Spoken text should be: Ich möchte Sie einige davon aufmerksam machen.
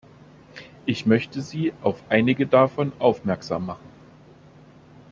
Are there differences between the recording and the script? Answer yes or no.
yes